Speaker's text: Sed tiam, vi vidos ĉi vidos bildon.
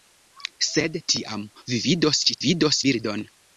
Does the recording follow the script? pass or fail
pass